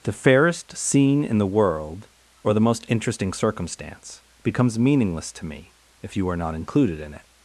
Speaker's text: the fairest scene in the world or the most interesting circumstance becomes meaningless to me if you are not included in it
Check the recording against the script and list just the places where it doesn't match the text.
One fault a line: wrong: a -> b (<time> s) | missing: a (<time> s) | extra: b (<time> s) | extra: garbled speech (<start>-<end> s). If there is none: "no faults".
no faults